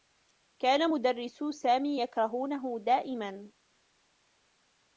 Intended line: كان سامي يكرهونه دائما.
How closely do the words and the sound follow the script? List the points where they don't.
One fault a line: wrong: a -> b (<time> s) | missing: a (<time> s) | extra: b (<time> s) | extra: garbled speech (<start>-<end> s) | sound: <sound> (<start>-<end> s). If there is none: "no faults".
extra: مدرّسو (0.9 s)